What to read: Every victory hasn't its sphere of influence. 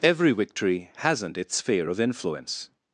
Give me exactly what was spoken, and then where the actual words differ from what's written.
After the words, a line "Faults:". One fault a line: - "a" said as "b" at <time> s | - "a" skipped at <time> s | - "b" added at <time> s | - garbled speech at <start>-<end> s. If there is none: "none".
Every victory hasn't its sphere of influence.
Faults:
none